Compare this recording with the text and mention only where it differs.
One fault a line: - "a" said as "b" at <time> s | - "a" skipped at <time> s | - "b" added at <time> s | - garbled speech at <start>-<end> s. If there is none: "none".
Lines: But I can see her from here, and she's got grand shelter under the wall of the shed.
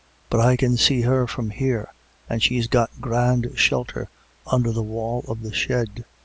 none